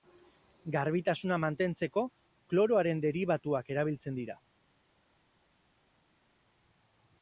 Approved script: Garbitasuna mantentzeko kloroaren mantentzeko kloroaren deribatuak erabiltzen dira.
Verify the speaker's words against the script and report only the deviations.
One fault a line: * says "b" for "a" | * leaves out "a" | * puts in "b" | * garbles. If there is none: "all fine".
* leaves out "mantentzeko kloroaren"